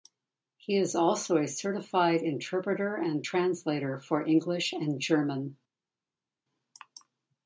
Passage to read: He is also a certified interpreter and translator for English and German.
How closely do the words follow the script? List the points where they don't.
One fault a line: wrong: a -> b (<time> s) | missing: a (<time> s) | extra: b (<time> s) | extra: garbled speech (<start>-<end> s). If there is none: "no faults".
no faults